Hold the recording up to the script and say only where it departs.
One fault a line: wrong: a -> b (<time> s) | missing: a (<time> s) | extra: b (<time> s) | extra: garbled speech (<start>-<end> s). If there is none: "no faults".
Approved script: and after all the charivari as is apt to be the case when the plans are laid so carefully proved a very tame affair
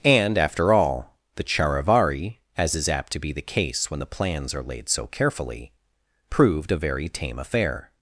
no faults